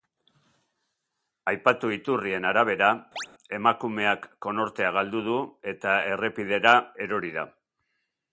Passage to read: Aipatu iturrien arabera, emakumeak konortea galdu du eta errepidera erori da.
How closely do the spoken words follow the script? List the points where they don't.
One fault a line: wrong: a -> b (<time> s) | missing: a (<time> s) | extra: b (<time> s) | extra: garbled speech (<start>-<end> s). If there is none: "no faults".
no faults